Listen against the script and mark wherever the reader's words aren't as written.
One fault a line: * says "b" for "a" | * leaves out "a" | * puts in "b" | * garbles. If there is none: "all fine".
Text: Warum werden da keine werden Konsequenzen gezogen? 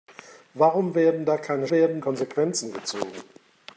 all fine